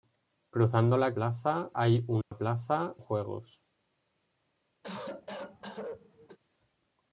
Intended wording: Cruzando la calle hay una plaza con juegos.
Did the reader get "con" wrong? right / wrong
wrong